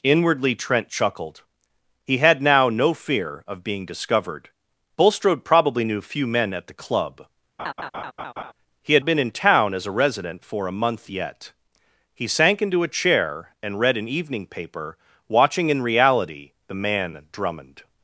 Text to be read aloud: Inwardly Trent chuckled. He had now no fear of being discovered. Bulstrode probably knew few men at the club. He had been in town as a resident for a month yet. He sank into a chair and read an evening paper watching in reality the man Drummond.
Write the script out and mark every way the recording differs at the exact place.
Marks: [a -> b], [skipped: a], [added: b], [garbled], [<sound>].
Inwardly Trent chuckled. He had now no fear of being discovered. Bulstrode probably knew few men at the club. [laugh] He had been in town as a resident for a month yet. He sank into a chair and read an evening paper watching in reality the man Drummond.